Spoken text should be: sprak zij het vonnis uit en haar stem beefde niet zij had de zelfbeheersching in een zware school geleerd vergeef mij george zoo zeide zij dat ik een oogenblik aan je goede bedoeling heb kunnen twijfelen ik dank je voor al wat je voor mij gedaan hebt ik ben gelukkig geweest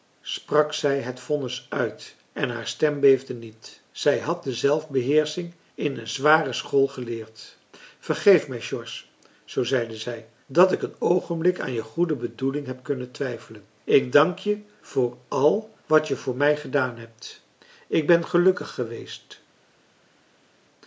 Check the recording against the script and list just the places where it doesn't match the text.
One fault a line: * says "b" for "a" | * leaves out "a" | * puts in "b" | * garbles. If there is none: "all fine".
all fine